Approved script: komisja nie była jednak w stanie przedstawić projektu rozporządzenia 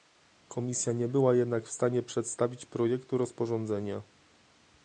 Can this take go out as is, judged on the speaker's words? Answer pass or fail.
pass